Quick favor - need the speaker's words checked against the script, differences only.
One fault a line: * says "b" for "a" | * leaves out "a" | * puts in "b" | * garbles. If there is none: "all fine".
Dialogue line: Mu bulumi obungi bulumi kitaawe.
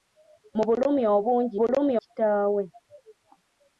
all fine